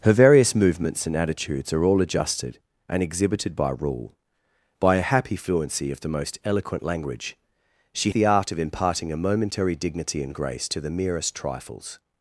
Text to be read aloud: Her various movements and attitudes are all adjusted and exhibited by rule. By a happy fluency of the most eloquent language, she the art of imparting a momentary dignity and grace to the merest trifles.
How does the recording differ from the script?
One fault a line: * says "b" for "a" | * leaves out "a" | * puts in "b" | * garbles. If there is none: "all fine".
all fine